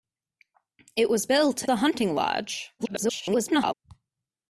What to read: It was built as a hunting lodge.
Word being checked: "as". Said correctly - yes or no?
no